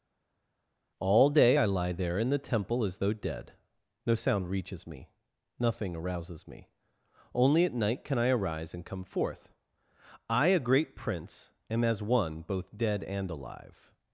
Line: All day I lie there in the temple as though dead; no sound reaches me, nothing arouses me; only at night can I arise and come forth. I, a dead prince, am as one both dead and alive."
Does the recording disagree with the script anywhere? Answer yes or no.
yes